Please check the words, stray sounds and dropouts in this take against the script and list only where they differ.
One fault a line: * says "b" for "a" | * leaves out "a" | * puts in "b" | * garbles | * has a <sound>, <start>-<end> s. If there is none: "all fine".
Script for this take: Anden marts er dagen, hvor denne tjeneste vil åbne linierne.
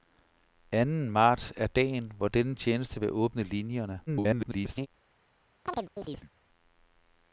* garbles
* has a chirp, 5.7-6.3 s